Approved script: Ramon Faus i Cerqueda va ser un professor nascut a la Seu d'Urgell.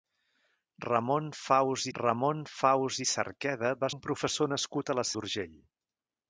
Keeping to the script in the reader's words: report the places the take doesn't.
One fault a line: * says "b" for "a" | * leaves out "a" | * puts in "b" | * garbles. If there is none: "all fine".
* puts in "ramon Faus"
* leaves out "ser"
* leaves out "Seu"